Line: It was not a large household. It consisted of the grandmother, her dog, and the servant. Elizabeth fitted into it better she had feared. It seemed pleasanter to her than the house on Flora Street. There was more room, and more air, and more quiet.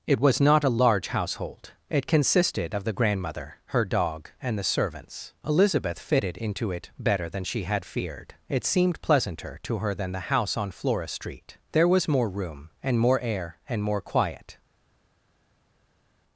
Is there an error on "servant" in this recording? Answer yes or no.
yes